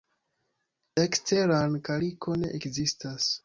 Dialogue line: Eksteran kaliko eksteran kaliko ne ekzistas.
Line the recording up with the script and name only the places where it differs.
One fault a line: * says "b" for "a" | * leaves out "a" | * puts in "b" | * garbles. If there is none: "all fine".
* leaves out "eksteran kaliko"